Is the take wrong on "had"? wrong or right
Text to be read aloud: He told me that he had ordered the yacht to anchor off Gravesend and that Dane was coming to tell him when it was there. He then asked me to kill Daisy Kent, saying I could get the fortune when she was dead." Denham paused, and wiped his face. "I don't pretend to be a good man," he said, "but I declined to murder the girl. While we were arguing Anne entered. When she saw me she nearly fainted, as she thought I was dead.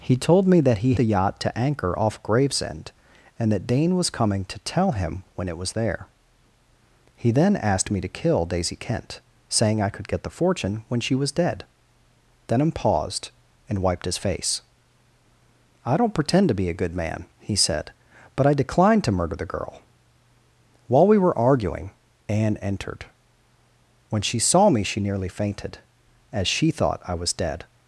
wrong